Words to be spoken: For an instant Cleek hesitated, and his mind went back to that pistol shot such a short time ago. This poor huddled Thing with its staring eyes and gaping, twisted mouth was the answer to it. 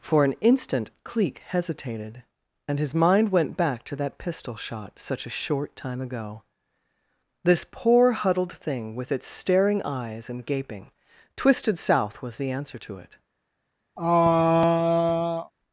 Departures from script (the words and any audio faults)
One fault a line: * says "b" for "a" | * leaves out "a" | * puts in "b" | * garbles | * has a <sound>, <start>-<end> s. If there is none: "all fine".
* says "south" for "mouth"
* has a throat clearing, 14.0-15.5 s